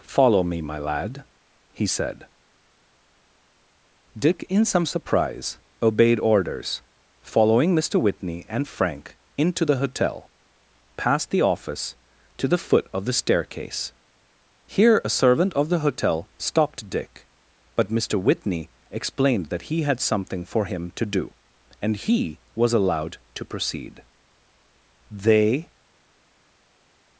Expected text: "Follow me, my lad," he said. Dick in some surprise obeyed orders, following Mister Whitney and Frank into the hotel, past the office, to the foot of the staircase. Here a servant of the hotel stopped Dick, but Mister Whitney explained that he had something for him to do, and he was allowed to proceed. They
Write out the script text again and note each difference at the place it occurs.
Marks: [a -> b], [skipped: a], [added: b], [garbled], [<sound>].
"Follow me, my lad," he said. Dick in some surprise obeyed orders, following Mister Whitney and Frank into the hotel, past the office, to the foot of the staircase. Here a servant of the hotel stopped Dick, but Mister Whitney explained that he had something for him to do, and he was allowed to proceed. They